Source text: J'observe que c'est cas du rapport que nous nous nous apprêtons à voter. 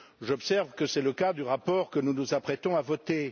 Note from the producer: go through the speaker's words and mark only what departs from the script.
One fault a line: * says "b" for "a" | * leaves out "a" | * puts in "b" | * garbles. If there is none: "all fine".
* puts in "le"
* leaves out "nous"